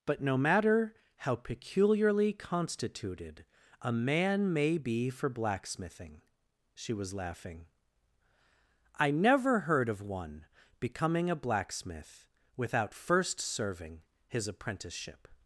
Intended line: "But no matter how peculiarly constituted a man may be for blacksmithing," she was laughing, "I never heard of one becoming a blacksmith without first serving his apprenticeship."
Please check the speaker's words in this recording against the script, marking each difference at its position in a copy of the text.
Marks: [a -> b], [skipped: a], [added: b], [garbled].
"But no matter how peculiarly constituted a man may be for blacksmithing," she was laughing, "I never heard of one becoming a blacksmith without first serving his apprenticeship."